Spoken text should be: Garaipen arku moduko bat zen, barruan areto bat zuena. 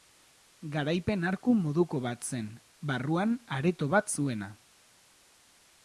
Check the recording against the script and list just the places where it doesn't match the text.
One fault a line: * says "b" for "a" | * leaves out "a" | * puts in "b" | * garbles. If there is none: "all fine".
all fine